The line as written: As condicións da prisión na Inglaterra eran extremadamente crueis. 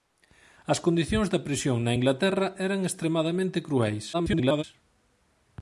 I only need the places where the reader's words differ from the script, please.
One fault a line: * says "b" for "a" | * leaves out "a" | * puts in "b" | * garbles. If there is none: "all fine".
* garbles